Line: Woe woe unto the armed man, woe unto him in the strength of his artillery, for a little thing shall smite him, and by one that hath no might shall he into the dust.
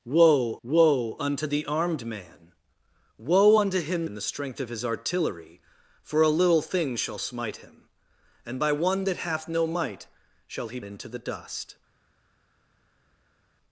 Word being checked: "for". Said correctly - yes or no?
yes